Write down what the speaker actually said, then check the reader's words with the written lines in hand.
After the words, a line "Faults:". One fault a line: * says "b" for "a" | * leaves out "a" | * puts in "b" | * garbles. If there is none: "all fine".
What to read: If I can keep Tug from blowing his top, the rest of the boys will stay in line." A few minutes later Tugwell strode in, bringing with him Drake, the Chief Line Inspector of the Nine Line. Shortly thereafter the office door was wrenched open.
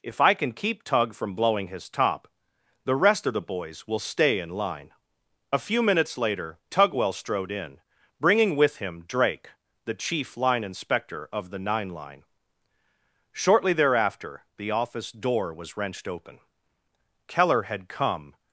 If I can keep Tug from blowing his top, the rest of the boys will stay in line." A few minutes later Tugwell strode in, bringing with him Drake, the Chief Line Inspector of the Nine Line. Shortly thereafter the office door was wrenched open. Keller had come
Faults:
* puts in "Keller had come"